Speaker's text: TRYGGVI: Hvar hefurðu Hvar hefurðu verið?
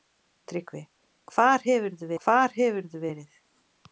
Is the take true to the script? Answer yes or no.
yes